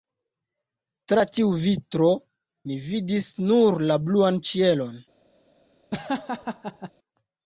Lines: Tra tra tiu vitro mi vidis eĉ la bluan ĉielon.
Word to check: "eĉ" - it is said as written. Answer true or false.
false